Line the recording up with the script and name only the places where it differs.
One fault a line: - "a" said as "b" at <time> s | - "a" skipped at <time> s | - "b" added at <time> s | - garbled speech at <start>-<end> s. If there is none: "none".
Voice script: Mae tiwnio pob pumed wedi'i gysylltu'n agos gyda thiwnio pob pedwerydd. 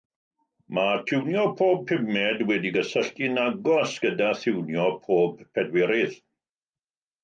none